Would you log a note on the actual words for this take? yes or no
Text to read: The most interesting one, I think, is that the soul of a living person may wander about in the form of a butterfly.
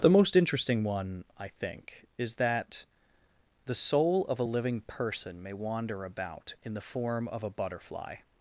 no